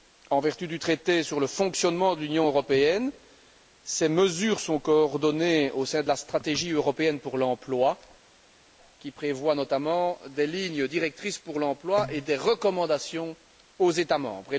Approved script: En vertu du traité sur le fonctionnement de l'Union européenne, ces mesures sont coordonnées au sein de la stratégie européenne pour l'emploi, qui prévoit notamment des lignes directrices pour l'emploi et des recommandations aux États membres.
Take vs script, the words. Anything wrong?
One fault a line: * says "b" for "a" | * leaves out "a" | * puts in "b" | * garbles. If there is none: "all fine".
all fine